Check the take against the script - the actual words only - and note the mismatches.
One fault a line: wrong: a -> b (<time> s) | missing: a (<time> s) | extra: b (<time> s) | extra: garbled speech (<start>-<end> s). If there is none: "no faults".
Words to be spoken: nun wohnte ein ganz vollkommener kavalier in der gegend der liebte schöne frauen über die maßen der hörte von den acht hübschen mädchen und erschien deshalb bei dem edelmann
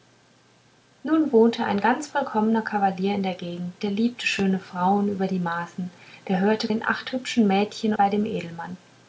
missing: von (6.7 s)
missing: und erschien deshalb (7.9 s)